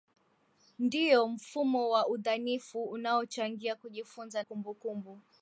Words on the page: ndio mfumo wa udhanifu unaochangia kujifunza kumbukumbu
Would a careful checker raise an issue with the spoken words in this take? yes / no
no